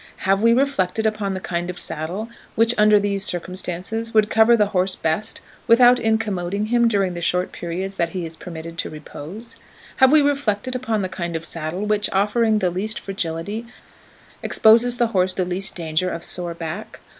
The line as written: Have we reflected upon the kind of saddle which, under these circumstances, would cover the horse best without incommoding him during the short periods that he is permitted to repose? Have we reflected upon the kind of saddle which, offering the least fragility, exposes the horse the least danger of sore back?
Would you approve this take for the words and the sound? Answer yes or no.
yes